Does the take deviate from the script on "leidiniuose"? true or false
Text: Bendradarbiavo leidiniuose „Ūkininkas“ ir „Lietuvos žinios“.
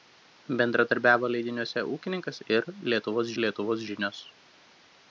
false